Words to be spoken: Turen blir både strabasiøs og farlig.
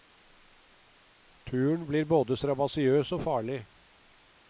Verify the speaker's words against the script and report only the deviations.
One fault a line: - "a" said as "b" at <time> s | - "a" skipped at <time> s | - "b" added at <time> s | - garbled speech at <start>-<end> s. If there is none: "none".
none